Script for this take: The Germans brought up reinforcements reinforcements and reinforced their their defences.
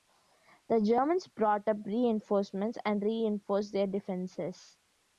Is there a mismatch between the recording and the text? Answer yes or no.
yes